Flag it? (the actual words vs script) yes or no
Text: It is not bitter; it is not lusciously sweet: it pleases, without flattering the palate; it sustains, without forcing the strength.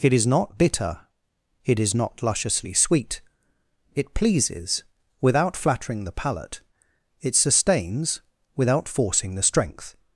no